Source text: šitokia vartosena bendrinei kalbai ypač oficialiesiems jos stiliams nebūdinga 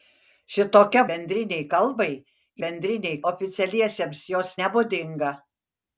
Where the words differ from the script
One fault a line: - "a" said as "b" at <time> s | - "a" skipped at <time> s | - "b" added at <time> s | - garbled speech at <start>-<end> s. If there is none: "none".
- "vartosena" skipped at 1.0 s
- "ypač" said as "bendrinei" at 2.6 s
- "stiliams" skipped at 4.5 s